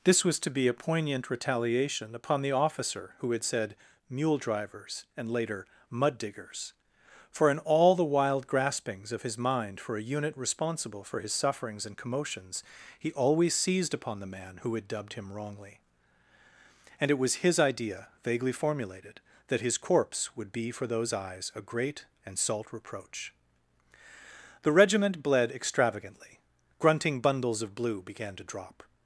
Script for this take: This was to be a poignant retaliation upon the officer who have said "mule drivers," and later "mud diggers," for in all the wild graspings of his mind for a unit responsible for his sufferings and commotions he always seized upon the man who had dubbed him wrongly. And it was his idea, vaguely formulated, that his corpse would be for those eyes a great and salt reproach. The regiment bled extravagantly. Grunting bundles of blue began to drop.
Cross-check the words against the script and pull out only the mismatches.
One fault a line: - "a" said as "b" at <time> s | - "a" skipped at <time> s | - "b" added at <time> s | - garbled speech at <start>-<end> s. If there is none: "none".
- "have" said as "had" at 3.3 s